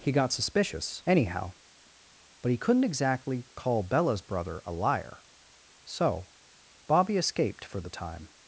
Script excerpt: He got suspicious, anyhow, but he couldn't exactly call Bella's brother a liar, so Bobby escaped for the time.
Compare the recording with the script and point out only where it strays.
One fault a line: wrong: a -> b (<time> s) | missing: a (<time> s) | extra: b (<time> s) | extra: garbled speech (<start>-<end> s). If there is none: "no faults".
no faults